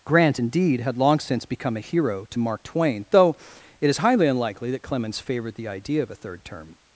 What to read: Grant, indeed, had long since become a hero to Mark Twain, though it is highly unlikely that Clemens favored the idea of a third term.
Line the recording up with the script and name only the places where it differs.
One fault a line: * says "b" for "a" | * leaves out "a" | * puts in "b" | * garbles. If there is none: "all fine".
all fine